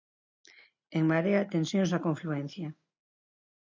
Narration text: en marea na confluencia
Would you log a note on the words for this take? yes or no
yes